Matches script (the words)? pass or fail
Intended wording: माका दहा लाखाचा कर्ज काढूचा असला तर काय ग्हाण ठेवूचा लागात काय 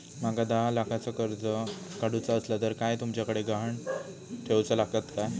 fail